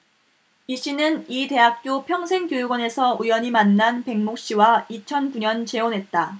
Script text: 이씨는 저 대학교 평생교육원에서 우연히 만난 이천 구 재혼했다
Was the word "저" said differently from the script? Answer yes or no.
yes